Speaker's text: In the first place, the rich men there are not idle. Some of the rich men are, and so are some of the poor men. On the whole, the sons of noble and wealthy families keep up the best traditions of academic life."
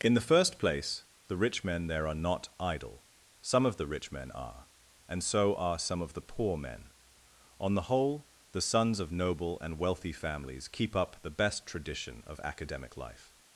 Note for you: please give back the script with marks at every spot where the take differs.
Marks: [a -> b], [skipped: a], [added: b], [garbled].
In the first place, the rich men there are not idle. Some of the rich men are, and so are some of the poor men. On the whole, the sons of noble and wealthy families keep up the best [traditions -> tradition] of academic life."